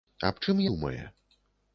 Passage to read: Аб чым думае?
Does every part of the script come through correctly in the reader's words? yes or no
yes